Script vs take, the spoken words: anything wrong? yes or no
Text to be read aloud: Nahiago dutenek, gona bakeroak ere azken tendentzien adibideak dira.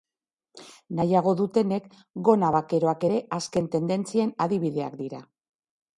no